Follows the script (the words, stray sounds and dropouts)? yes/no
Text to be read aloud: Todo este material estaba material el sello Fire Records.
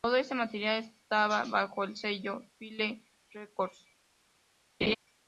no